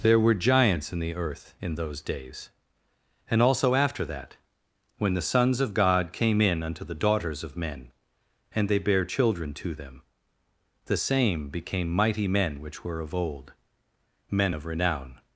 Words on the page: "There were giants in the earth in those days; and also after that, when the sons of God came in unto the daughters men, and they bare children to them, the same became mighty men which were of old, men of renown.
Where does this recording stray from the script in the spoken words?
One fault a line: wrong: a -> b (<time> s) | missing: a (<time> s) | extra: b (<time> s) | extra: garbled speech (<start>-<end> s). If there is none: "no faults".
extra: of (7.4 s)